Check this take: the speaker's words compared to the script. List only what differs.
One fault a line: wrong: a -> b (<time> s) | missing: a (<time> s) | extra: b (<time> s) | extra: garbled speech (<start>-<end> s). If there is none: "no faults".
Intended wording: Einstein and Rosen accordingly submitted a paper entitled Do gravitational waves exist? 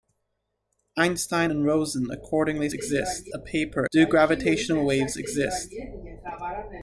wrong: submitted -> exist (2.7 s)
missing: entitled (3.9 s)